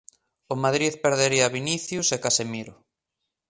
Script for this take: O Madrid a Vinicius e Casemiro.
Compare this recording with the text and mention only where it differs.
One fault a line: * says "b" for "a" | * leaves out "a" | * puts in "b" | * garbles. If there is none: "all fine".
* puts in "perdería"